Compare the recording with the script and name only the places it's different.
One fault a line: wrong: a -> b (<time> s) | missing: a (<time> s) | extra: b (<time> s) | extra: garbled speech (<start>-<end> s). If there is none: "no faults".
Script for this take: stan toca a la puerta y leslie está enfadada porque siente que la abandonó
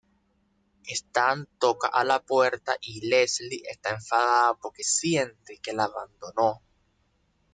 no faults